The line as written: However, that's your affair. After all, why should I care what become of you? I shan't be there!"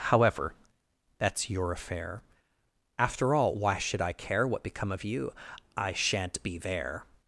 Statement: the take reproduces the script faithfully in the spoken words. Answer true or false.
true